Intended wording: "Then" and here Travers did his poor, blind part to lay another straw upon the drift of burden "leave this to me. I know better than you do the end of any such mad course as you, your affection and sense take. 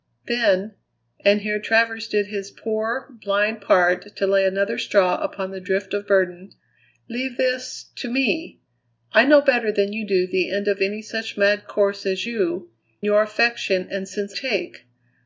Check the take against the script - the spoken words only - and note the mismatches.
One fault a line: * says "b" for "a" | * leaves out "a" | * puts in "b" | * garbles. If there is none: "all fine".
all fine